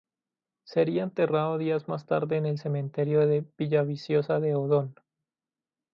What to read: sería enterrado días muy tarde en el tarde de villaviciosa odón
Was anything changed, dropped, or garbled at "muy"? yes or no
yes